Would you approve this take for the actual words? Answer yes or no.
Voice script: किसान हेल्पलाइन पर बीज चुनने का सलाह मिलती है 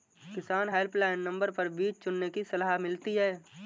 no